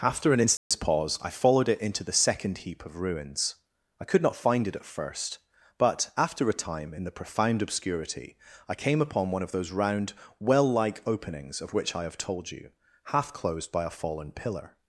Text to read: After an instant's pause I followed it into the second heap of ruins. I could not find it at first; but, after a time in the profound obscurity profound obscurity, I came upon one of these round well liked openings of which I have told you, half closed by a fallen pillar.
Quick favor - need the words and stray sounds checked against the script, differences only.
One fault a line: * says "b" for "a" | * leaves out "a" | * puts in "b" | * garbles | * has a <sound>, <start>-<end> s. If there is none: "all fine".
* has a dropout, 0.6-0.7 s
* leaves out "profound obscurity"
* says "those" for "these"
* says "like" for "liked"